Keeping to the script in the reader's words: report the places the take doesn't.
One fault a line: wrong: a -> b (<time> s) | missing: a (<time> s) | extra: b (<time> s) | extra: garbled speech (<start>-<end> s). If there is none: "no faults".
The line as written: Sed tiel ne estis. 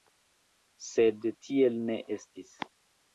no faults